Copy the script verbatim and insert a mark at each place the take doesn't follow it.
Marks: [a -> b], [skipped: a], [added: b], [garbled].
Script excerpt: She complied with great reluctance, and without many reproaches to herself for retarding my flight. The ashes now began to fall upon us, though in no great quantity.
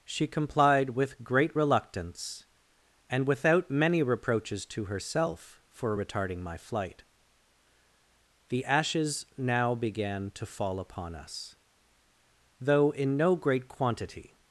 She complied with great reluctance, and without many reproaches to herself for retarding my flight. The ashes now began to fall upon us, though in no great quantity.